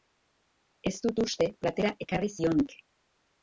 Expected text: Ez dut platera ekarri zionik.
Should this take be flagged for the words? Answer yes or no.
yes